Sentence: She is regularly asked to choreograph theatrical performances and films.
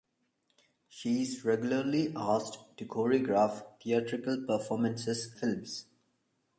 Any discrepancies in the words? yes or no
yes